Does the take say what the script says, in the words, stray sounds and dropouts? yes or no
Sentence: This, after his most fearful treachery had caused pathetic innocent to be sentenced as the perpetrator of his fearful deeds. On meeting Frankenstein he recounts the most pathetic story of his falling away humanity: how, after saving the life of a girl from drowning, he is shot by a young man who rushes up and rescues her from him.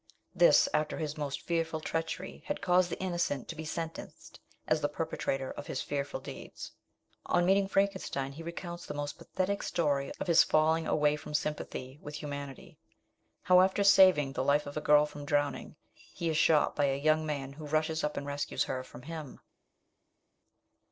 no